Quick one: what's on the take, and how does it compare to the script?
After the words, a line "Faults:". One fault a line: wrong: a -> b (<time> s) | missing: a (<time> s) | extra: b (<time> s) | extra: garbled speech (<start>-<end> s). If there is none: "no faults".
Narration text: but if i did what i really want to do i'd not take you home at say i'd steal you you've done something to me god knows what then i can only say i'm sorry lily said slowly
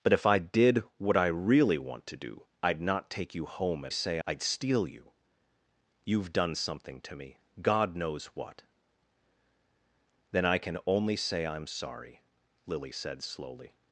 but if i did what i really want to do i'd not take you home at say i'd steal you you've done something to me god knows what then i can only say i'm sorry lily said slowly
Faults:
no faults